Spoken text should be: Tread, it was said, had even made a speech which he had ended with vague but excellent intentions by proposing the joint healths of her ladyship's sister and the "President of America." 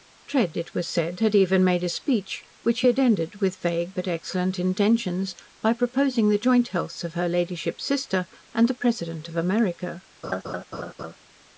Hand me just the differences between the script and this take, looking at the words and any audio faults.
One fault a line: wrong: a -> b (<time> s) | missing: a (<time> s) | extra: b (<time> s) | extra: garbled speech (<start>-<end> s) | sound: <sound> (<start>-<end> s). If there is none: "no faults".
sound: laugh (10.2-11.2 s)